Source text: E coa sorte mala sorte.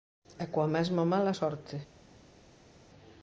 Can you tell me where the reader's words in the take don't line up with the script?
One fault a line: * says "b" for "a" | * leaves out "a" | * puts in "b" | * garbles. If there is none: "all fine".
* says "mesma" for "sorte"